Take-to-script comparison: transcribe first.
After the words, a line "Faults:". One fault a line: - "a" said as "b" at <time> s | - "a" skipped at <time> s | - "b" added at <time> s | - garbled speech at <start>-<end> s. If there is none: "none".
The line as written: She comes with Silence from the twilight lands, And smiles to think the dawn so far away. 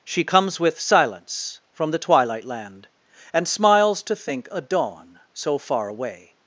She comes with Silence from the twilight land, And smiles to think a dawn so far away.
Faults:
- "lands" said as "land" at 2.5 s
- "the" said as "a" at 4.5 s